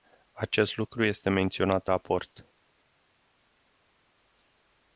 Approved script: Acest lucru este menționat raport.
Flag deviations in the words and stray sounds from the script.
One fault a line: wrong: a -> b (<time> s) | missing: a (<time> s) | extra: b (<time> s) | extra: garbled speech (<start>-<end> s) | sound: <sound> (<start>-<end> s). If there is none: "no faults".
no faults